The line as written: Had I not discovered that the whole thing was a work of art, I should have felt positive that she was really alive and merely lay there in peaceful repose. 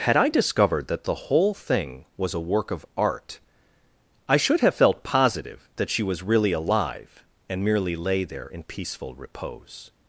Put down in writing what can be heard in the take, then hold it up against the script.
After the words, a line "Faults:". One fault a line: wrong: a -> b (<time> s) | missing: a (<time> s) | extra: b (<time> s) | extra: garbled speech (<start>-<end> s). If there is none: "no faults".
Had I discovered that the whole thing was a work of art, I should have felt positive that she was really alive and merely lay there in peaceful repose.
Faults:
missing: not (0.3 s)